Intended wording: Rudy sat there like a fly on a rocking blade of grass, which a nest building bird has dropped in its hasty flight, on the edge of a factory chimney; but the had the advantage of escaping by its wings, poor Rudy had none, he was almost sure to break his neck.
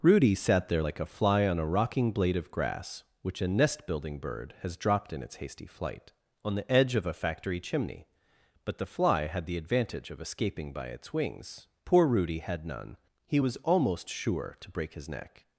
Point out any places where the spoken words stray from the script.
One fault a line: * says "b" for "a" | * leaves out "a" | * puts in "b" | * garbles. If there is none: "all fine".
* puts in "fly"